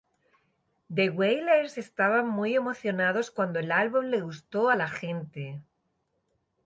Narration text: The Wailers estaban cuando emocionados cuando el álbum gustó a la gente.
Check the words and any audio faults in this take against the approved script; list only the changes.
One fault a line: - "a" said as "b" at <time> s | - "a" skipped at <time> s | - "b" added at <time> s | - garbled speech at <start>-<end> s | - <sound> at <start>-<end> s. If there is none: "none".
- "cuando" said as "muy" at 2.3 s
- "le" added at 4.0 s